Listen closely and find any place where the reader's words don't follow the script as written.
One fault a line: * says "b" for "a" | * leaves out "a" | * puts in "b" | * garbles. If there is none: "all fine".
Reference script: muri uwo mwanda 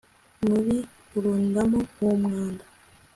* puts in "kurundamo"